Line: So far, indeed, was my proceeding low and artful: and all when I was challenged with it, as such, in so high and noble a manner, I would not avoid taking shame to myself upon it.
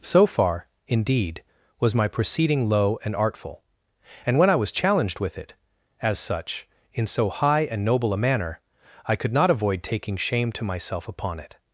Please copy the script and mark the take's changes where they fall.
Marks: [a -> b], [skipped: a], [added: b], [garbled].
So far, indeed, was my proceeding low and artful: and [skipped: all] when I was challenged with it, as such, in so high and noble a manner, I [would -> could] not avoid taking shame to myself upon it.